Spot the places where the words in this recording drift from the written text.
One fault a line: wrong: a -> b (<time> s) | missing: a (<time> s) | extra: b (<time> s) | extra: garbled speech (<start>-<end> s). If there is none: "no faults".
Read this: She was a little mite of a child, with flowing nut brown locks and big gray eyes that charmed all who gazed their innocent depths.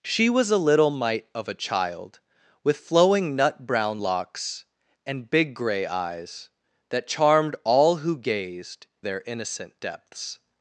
no faults